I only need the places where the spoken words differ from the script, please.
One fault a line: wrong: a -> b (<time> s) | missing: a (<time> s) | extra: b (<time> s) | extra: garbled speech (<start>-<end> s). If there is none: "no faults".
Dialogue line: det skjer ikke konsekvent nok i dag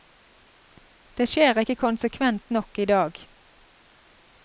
no faults